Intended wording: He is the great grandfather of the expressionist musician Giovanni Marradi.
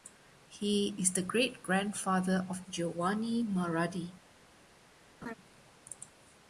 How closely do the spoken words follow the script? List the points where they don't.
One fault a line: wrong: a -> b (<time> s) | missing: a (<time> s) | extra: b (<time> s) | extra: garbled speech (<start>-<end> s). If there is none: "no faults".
missing: the expressionist musician (2.6 s)